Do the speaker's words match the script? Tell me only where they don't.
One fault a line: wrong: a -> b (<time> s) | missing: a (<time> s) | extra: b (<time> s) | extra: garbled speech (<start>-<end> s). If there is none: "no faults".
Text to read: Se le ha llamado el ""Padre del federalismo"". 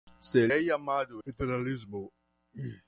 missing: le (0.5 s)
missing: el Padre del (1.2 s)